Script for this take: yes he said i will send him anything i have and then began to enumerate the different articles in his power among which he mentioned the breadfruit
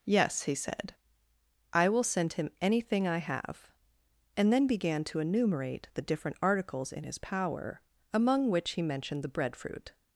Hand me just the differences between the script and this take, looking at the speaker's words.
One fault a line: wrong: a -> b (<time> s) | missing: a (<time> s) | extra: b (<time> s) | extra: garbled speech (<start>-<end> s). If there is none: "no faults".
no faults